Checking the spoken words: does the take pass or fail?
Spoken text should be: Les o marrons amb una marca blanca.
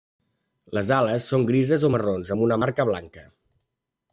fail